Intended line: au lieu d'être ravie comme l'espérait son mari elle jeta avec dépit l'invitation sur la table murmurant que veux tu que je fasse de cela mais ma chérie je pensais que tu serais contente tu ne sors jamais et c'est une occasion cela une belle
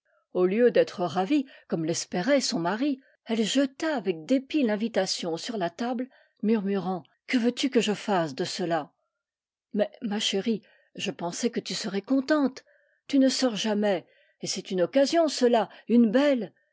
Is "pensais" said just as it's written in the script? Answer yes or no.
yes